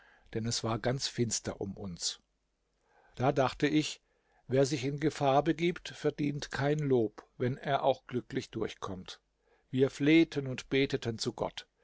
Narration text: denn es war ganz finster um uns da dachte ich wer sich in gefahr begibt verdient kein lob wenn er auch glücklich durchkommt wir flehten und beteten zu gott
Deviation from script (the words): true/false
false